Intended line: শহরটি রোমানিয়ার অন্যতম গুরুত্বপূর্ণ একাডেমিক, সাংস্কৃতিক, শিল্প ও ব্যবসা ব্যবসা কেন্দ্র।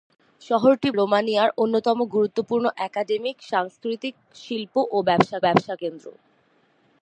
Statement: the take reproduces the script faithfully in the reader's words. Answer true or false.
true